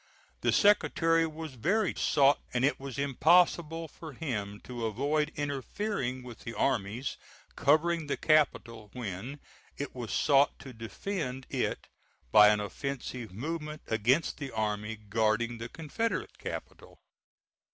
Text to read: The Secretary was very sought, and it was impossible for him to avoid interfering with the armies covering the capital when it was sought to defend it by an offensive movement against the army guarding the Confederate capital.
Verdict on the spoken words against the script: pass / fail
pass